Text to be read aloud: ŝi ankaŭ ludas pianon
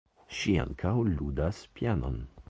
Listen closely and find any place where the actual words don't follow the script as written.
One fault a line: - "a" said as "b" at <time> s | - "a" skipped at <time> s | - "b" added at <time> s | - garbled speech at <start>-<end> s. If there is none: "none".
none